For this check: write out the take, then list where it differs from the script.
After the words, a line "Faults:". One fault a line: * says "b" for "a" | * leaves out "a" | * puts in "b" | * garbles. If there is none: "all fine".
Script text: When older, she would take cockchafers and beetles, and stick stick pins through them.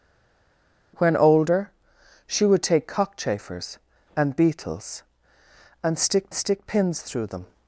When older, she would take cockchafers and beetles, and stick stick pins through them.
Faults:
all fine